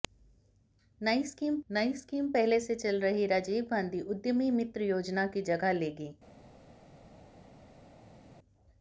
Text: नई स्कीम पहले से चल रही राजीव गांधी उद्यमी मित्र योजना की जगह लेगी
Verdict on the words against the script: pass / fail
fail